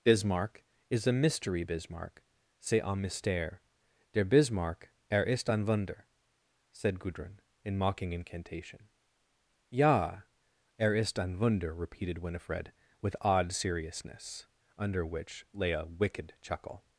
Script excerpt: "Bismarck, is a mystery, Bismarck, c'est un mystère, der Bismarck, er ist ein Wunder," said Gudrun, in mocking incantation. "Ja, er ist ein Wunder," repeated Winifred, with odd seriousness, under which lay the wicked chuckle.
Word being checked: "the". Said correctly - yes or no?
no